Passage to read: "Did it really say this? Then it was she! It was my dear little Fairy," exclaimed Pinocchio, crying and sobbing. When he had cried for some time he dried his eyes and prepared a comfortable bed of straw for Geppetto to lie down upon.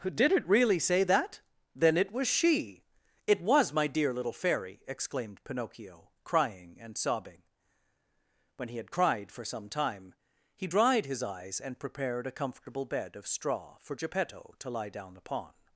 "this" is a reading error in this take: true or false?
true